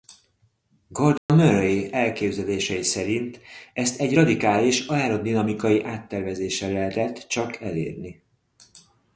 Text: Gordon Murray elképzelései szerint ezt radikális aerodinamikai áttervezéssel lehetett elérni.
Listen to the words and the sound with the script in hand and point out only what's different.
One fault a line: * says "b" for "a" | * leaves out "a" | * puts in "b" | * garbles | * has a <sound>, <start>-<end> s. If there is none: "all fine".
* has a dropout, 1.2-1.3 s
* puts in "egy"
* puts in "csak"